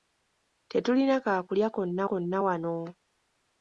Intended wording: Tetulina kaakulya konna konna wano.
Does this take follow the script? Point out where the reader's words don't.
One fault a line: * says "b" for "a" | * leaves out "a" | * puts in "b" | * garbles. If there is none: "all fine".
all fine